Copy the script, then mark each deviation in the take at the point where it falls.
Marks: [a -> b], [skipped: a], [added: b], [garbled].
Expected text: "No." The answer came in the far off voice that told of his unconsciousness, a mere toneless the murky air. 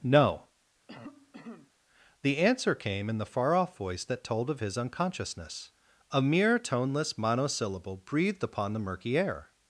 "No." The answer came in the far off voice that told of his unconsciousness, a mere toneless [added: monosyllable breathed upon] the murky air.